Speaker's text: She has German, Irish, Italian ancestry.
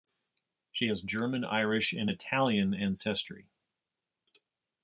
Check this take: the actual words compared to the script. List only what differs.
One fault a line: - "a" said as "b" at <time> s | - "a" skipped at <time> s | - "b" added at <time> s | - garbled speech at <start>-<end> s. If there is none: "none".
- "and" added at 1.9 s